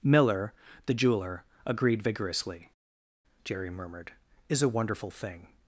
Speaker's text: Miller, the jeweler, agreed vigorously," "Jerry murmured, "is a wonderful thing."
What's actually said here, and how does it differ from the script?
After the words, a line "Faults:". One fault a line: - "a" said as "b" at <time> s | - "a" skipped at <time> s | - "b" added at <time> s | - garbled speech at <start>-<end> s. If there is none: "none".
Miller, the jeweler, agreed vigorously," "Jerry murmured, "is a wonderful thing."
Faults:
none